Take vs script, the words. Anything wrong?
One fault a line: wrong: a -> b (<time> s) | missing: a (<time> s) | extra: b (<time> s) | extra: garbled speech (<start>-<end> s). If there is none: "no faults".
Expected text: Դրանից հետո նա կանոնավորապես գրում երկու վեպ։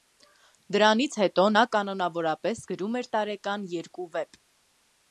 extra: էր տարեկան (3.0 s)